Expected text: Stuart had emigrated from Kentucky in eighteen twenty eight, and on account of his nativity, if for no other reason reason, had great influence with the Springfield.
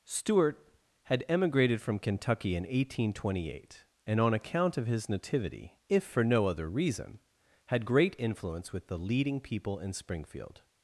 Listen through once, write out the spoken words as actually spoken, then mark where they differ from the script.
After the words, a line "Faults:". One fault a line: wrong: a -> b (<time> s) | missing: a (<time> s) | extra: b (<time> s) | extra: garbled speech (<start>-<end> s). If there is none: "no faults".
Stuart had emigrated from Kentucky in eighteen twenty eight, and on account of his nativity, if for no other reason, had great influence with the leading people in Springfield.
Faults:
missing: reason (7.2 s)
extra: leading people in (9.0 s)